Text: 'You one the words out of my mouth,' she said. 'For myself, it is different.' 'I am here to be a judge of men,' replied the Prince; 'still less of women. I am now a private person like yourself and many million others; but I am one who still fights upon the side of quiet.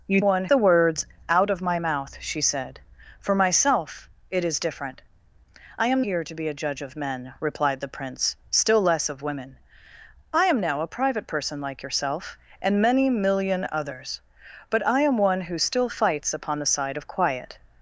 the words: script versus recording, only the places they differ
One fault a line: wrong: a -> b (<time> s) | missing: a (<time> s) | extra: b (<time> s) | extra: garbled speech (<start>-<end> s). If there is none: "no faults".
no faults